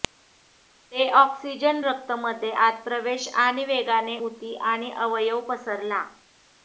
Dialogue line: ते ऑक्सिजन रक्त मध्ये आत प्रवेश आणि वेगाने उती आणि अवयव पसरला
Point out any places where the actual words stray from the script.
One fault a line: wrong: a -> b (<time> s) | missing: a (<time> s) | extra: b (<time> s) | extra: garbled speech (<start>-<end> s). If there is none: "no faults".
no faults